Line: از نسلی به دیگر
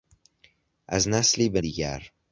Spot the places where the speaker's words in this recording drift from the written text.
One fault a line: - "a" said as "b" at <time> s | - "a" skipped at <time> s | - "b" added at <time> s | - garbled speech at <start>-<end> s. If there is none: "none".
none